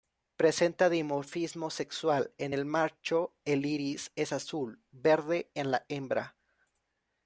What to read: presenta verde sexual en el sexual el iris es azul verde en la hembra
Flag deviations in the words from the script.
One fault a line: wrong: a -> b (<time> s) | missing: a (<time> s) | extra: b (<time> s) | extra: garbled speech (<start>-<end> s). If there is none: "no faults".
wrong: verde -> dimorfismo (0.9 s)
wrong: sexual -> macho (2.6 s)